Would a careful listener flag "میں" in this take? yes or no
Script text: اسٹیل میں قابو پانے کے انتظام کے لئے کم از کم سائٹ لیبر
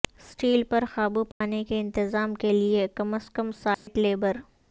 yes